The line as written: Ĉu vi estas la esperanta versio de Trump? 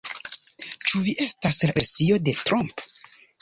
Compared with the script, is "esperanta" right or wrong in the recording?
wrong